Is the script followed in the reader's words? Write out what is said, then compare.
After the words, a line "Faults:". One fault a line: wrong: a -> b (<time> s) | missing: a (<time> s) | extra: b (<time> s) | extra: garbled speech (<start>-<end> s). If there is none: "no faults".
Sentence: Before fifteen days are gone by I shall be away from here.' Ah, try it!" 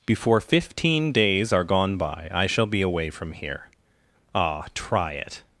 Before fifteen days are gone by I shall be away from here.' Ah, try it!"
Faults:
no faults